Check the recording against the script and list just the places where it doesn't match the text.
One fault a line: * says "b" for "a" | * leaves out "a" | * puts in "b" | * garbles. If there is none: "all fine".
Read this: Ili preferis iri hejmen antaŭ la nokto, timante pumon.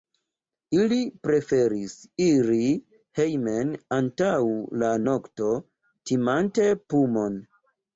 all fine